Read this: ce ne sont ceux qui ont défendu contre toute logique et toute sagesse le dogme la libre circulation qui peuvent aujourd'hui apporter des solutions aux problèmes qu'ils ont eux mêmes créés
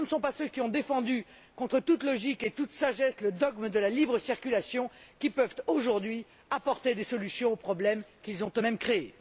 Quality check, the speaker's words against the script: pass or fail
fail